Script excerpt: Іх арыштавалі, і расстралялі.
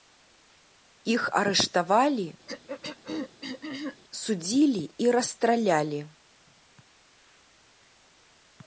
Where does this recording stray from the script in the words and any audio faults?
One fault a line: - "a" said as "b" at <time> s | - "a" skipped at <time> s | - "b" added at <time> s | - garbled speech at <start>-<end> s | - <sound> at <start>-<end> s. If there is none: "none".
- throat clearing at 2.5-4.0 s
- "судзілі" added at 4.2 s